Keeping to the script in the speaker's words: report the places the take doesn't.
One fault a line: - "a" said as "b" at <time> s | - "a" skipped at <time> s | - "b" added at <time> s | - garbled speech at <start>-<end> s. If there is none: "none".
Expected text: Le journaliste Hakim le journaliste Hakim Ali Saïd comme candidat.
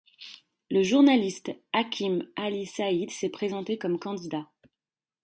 - "le journaliste Hakim Ali Saïd" said as "Ali Saïd s'est présenté" at 2.4 s